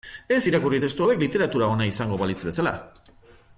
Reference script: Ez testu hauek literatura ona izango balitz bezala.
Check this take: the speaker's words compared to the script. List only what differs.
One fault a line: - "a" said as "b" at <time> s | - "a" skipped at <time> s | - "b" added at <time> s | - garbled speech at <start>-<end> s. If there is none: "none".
- "irakurri" added at 0.5 s